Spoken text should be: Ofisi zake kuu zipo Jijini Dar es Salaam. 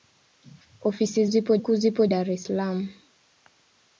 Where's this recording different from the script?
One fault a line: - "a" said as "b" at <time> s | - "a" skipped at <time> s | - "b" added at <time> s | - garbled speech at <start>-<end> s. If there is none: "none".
- "zake" said as "zipo" at 1.2 s
- "Jijini" skipped at 2.1 s